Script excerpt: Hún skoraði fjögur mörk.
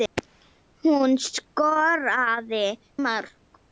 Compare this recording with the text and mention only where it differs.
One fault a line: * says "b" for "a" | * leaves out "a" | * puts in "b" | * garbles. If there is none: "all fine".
* leaves out "fjögur"